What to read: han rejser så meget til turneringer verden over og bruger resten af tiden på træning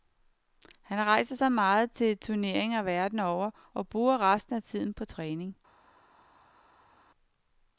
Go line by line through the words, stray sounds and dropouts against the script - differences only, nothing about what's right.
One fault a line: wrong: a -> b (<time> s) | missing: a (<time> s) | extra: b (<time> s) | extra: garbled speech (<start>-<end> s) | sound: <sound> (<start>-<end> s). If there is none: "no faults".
no faults